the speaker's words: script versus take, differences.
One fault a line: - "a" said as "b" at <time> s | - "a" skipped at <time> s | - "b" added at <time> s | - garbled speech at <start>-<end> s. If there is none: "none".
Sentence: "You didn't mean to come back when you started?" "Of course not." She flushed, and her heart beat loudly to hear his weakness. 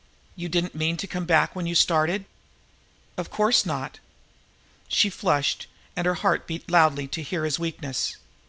none